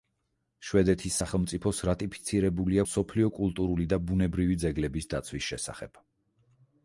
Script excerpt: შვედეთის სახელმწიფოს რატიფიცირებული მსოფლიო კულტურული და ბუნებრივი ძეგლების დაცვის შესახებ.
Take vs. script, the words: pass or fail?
pass